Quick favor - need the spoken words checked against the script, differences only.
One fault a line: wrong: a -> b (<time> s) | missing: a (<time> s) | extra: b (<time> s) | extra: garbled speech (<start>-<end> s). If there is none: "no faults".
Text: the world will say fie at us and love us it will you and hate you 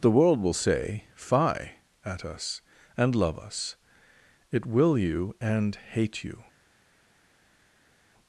no faults